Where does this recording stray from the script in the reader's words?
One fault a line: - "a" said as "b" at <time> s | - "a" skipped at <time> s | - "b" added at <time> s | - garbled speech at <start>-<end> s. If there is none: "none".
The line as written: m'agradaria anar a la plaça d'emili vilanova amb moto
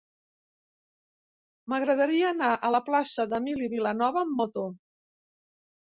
none